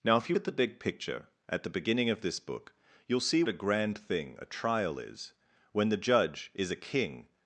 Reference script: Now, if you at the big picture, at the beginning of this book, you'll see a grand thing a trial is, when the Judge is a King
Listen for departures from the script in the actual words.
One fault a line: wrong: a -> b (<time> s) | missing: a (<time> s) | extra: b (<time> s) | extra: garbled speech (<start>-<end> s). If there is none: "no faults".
no faults